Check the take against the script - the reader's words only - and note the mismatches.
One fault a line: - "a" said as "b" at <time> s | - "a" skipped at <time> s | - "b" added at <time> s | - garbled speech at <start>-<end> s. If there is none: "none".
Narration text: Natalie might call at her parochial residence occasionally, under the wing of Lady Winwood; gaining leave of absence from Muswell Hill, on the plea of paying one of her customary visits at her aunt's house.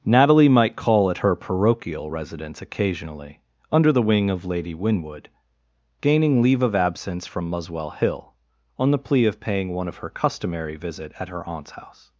- "visits" said as "visit" at 10.8 s